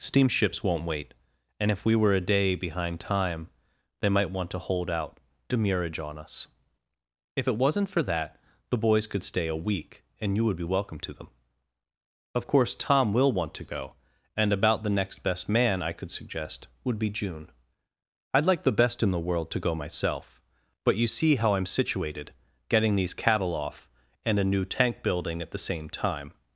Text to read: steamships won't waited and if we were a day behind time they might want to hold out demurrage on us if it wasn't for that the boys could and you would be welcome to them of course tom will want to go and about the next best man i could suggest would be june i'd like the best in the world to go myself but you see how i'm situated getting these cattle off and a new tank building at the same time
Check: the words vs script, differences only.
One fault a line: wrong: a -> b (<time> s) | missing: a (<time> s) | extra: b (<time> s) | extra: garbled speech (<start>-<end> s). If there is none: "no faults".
wrong: waited -> wait (0.8 s)
extra: stay a week (9.2 s)